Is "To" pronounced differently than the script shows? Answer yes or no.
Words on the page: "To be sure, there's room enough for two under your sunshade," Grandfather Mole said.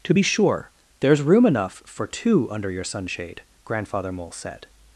no